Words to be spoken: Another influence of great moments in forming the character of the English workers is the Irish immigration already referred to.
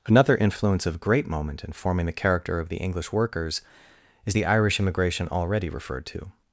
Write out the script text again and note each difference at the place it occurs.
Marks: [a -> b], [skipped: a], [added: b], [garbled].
Another influence of great [moments -> moment] in forming the character of the English workers is the Irish immigration already referred to.